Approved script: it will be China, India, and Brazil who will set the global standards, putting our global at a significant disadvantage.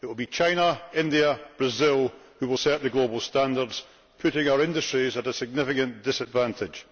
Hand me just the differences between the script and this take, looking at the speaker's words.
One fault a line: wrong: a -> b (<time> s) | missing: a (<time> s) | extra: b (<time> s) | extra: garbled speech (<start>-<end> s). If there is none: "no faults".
wrong: global -> industries (4.6 s)